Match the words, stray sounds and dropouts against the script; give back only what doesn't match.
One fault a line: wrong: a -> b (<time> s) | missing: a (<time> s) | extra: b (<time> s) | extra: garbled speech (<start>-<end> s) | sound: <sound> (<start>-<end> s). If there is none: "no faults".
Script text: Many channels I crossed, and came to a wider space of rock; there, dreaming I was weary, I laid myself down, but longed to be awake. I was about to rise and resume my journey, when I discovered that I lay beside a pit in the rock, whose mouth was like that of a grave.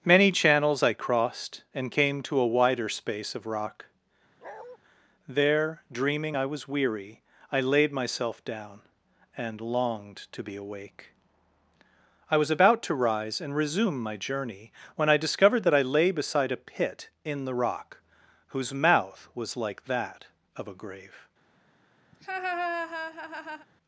sound: bark (4.4-4.8 s)
wrong: but -> and (9.4 s)
sound: laugh (22.1-23.7 s)